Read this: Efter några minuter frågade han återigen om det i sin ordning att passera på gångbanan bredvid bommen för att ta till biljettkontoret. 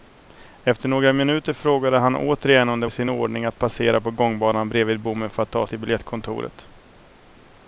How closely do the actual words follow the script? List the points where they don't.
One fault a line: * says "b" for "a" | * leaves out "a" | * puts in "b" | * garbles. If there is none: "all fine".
all fine